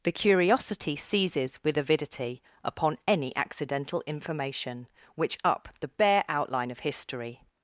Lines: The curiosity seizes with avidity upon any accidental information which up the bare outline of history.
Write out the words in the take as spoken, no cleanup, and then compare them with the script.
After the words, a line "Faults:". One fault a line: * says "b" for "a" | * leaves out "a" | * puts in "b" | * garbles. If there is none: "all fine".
The curiosity seizes with avidity upon any accidental information which up the bare outline of history.
Faults:
all fine